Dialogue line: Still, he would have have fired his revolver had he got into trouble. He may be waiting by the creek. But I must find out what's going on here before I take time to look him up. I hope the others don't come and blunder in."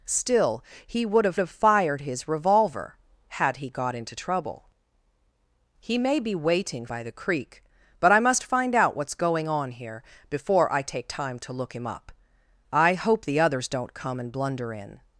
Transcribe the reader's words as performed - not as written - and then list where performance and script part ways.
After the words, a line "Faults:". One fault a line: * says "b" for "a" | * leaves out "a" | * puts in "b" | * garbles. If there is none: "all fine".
Still, he would have have fired his revolver had he got into trouble. He may be waiting by the creek. But I must find out what's going on here before I take time to look him up. I hope the others don't come and blunder in."
Faults:
all fine